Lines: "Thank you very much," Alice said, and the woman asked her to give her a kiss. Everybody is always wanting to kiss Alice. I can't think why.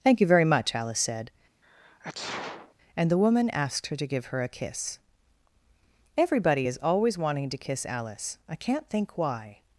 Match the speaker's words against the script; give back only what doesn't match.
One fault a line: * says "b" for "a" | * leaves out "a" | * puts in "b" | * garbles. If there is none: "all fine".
all fine